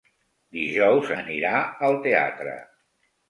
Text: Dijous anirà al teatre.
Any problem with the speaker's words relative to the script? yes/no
no